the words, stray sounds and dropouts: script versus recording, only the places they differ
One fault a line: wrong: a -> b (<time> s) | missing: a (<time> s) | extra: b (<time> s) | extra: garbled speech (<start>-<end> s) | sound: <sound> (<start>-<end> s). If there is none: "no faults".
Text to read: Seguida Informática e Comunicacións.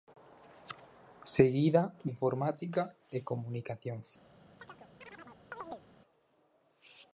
sound: chirp (4.6-5.9 s)